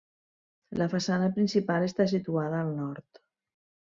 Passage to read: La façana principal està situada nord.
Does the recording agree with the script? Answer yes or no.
no